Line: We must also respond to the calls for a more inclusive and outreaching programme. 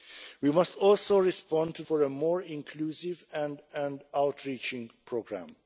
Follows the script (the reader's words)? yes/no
no